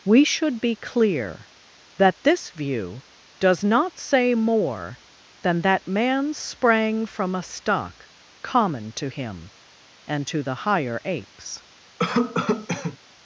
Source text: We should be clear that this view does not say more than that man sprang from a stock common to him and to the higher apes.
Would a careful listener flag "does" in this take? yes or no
no